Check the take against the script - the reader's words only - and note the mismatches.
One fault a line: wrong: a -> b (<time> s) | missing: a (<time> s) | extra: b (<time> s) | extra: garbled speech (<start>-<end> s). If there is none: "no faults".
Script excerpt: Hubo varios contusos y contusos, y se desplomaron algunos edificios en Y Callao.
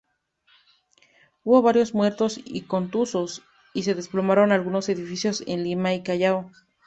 wrong: contusos -> muertos (1.9 s)
extra: Lima (5.6 s)